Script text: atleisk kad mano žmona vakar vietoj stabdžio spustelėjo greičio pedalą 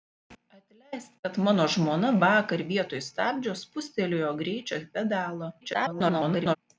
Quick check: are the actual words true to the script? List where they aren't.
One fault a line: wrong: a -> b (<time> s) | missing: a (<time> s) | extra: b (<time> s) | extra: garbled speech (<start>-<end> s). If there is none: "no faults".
extra: garbled speech (5.6-6.6 s)